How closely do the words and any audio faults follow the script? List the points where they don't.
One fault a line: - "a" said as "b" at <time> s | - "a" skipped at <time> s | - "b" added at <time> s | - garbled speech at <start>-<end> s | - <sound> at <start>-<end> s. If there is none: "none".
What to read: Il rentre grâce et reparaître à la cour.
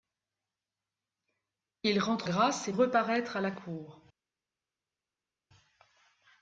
none